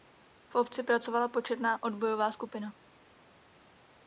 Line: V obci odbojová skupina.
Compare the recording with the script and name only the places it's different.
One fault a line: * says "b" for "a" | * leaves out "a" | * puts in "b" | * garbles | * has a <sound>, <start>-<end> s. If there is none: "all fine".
* puts in "pracovala početná"